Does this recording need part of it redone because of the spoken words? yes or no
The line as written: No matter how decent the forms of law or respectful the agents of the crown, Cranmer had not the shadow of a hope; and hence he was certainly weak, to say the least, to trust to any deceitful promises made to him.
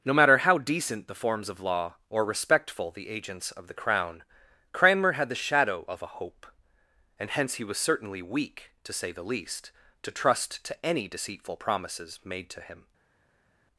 yes